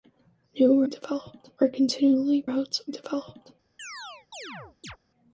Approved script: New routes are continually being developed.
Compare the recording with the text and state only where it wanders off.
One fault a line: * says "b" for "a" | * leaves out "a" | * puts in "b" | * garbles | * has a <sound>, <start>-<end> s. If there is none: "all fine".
* says "developed" for "routes"
* says "routes" for "being"
* has a chirp, 3.8-5.0 s